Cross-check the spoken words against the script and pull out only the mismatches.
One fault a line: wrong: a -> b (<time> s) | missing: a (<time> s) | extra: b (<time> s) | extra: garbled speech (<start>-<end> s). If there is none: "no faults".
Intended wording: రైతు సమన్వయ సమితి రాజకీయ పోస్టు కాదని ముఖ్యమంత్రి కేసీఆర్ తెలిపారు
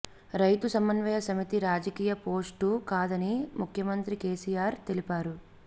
no faults